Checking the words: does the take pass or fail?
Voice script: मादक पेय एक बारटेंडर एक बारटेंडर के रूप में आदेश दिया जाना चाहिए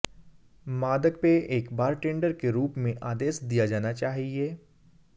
fail